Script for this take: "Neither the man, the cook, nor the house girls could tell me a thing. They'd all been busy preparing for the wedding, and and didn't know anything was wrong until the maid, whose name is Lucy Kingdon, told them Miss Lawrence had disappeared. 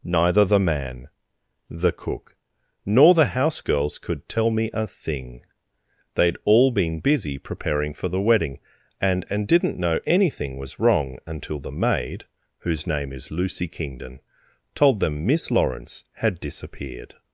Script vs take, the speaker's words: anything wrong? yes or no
no